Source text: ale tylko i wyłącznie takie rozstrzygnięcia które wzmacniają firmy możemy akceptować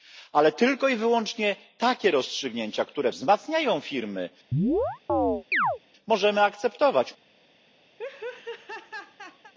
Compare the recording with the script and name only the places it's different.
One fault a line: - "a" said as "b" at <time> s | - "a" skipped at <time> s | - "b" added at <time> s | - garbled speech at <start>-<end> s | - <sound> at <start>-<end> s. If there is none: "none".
- chirp at 4.5-5.8 s
- laugh at 8.0-9.5 s